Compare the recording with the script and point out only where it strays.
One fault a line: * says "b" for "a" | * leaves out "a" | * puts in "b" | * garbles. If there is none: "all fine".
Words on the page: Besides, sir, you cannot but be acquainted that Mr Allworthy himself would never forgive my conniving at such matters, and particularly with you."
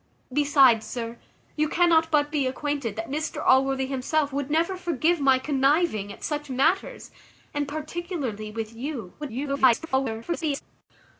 * garbles